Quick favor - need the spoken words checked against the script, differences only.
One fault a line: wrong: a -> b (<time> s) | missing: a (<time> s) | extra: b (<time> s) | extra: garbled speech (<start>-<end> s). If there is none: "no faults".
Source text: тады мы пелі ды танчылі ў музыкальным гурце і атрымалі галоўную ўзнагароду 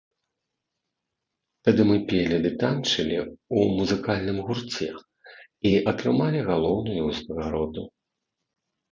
no faults